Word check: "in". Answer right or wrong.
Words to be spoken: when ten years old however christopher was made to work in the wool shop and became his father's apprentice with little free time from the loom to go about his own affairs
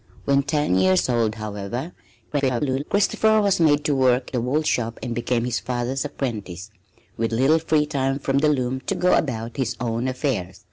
wrong